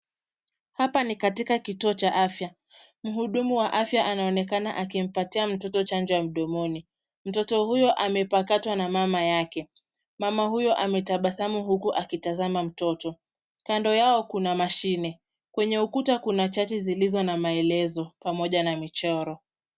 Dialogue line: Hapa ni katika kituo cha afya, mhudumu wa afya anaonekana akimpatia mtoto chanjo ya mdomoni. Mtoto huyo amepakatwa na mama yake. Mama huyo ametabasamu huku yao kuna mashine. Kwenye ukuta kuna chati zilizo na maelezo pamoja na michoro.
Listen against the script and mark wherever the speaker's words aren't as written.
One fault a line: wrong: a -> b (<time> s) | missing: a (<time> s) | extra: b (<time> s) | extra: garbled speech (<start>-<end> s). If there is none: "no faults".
extra: akitazama mtoto kando (11.9 s)